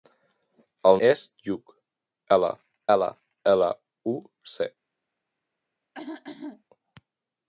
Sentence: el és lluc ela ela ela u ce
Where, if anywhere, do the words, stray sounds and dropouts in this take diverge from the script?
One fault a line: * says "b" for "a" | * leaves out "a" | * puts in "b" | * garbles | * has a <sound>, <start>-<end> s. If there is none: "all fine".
* has a throat clearing, 5.9-6.6 s